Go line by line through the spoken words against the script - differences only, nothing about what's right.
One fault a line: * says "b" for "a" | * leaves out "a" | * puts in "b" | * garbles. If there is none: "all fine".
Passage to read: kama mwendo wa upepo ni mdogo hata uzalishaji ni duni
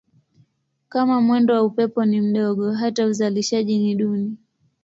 all fine